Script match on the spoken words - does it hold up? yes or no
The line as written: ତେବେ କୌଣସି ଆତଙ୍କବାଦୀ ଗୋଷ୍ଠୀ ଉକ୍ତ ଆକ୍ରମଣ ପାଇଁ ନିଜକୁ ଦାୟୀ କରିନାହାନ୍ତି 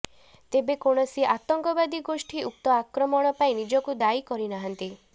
yes